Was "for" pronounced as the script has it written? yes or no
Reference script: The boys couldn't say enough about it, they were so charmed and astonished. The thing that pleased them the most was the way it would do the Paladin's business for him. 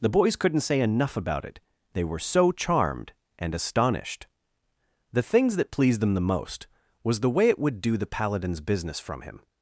no